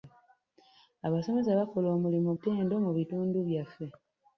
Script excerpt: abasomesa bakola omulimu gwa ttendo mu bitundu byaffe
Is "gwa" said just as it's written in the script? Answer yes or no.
no